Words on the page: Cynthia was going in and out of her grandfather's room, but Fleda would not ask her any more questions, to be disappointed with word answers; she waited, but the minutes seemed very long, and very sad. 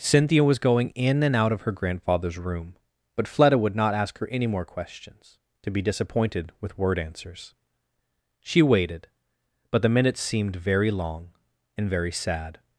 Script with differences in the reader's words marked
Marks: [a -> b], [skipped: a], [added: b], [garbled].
Cynthia was going in and out of her grandfather's room, but Fleda would not ask her any more questions, to be disappointed with word answers; she waited, but the minutes seemed very long, and very sad.